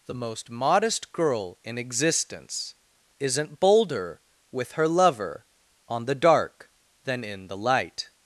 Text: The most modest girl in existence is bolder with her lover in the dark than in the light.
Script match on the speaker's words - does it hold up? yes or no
no